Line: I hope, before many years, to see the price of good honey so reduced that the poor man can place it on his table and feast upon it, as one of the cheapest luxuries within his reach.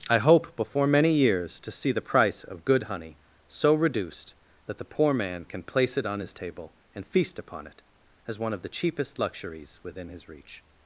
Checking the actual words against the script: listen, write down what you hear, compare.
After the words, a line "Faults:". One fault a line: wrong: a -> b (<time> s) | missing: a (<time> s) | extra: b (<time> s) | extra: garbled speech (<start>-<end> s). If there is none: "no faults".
I hope, before many years, to see the price of good honey so reduced that the poor man can place it on his table and feast upon it, as one of the cheapest luxuries within his reach.
Faults:
no faults